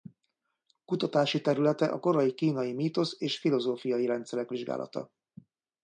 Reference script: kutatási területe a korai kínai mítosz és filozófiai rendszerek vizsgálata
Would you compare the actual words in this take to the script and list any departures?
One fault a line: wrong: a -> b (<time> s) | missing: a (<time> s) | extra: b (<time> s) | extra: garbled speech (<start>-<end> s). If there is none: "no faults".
no faults